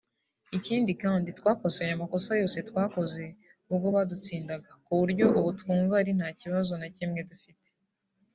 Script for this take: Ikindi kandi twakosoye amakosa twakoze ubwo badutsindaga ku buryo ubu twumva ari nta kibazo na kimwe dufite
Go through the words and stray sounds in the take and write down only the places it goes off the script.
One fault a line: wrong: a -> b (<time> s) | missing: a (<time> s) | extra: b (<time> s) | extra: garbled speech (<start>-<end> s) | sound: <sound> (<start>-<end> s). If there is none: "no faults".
extra: yose (2.4 s)